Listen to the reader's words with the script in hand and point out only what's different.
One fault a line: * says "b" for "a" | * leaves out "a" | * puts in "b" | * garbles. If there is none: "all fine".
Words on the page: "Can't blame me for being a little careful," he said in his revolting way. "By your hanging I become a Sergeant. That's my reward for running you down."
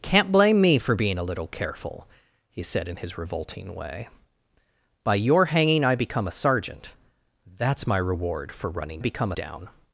* says "become" for "you"